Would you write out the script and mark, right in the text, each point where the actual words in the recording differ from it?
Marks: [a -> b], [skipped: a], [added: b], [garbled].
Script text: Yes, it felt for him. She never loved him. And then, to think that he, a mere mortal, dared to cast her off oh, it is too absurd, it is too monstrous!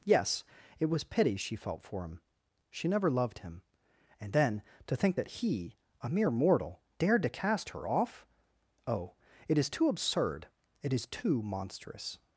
Yes, it [added: was pity she] felt for him. She never loved him. And then, to think that he, a mere mortal, dared to cast her off oh, it is too absurd, it is too monstrous!